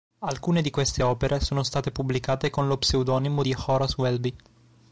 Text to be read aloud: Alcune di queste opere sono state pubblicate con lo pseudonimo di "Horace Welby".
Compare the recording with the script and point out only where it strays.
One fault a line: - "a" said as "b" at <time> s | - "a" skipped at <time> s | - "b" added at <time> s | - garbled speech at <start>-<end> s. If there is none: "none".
none